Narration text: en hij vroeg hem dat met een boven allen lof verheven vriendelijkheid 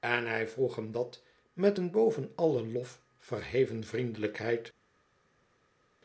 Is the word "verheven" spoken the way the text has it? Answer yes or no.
yes